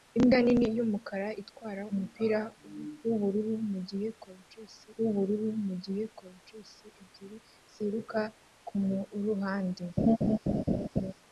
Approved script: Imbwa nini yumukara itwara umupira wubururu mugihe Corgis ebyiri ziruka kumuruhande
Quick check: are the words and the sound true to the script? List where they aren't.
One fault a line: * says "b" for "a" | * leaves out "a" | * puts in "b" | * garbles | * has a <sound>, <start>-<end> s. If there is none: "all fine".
* puts in "wubururu mugihe Corgis"
* has a laugh, 10.0-11.1 s